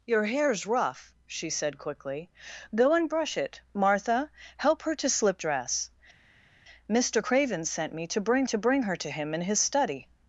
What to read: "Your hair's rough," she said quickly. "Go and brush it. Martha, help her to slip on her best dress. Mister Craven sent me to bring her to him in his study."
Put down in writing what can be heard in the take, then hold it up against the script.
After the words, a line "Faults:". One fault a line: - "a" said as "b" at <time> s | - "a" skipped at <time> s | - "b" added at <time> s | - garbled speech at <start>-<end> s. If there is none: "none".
"Your hair's rough," she said quickly. "Go and brush it. Martha, help her to slip dress. Mister Craven sent me to bring to bring her to him in his study."
Faults:
- "on her best" skipped at 5.4 s
- "to bring" added at 8.4 s